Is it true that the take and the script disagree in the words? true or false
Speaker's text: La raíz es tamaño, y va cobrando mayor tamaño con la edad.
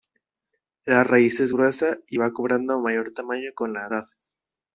true